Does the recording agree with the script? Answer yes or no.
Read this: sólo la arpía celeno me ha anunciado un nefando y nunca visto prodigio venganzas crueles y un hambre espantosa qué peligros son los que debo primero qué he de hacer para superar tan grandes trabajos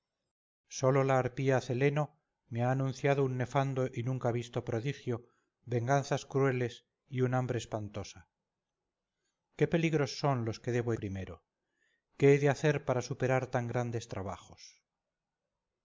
yes